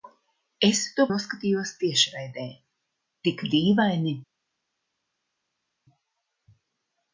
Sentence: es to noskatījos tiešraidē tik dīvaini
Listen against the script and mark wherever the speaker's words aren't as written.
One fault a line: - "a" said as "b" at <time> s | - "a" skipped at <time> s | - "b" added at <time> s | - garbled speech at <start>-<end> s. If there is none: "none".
none